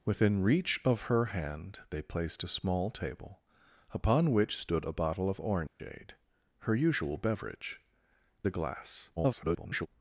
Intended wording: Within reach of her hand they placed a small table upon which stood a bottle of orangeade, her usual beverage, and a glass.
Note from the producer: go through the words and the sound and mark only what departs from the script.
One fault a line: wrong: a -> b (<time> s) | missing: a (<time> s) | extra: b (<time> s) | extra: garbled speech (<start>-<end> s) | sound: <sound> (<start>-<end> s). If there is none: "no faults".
sound: dropout (5.7-5.8 s)
missing: and (7.8 s)
extra: garbled speech (9.2-9.9 s)